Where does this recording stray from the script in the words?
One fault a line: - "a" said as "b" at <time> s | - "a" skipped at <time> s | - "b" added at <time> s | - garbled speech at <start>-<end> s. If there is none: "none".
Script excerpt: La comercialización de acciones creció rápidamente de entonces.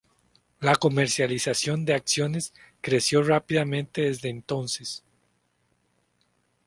- "de" said as "desde" at 4.0 s